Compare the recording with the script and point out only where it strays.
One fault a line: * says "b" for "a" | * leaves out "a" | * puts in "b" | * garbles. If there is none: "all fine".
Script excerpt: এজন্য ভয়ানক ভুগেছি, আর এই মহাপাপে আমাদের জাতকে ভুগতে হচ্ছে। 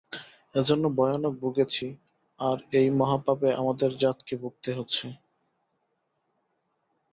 all fine